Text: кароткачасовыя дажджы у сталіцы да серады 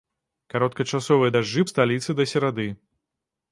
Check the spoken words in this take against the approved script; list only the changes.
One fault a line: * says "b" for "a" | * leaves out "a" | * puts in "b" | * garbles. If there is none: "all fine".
all fine